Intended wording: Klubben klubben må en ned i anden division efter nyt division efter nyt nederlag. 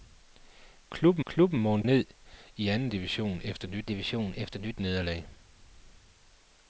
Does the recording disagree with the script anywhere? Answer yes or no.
no